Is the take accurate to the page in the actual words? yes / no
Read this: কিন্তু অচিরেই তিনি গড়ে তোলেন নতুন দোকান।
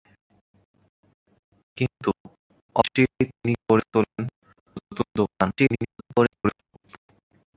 no